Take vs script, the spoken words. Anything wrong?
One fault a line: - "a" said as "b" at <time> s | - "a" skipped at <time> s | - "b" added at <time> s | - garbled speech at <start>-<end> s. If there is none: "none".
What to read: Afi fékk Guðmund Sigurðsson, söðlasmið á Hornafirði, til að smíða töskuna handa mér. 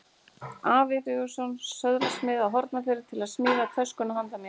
- "fékk Guðmund" skipped at 1.0 s